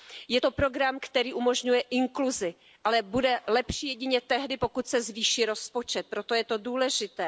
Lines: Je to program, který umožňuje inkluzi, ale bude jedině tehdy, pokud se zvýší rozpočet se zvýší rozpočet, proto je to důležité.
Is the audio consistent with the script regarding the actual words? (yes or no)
no